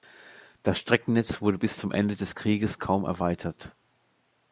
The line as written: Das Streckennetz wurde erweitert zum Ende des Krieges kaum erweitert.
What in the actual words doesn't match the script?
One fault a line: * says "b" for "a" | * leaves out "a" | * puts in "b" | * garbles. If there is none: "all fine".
* says "bis" for "erweitert"